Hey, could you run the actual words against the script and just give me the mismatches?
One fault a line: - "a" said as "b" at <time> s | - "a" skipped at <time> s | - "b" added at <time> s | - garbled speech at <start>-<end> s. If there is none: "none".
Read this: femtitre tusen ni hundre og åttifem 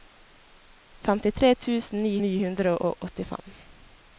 - "ni" added at 2.2 s